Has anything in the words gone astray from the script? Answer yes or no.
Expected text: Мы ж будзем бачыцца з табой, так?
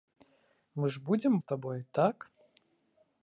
yes